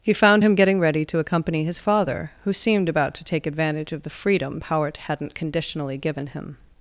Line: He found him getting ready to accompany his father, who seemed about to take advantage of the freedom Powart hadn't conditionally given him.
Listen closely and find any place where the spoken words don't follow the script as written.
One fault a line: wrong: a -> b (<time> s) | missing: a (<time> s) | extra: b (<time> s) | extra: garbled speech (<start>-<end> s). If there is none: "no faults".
no faults